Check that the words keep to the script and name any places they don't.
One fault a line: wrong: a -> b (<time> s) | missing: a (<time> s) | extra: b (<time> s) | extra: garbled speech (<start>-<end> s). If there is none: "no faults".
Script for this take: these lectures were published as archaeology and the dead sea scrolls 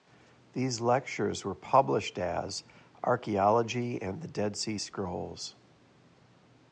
no faults